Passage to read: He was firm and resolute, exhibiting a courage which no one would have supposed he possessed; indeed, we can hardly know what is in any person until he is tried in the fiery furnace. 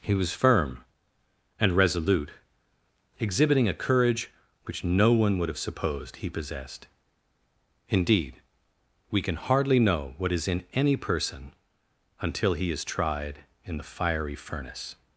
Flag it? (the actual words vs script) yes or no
no